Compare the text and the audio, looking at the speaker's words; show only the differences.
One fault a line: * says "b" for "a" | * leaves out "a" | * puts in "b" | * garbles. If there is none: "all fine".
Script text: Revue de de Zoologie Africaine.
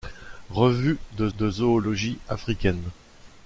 all fine